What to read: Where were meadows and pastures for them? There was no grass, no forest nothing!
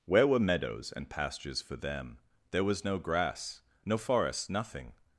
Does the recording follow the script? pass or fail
pass